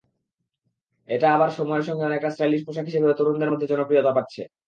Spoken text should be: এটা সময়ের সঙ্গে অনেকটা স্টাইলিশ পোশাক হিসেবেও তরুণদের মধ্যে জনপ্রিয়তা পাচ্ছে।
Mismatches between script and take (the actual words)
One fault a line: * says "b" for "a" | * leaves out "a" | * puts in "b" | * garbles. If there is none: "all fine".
* puts in "আবার"